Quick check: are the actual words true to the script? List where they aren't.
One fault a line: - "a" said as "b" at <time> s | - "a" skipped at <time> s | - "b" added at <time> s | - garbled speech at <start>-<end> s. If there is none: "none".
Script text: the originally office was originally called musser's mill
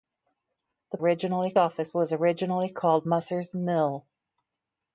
none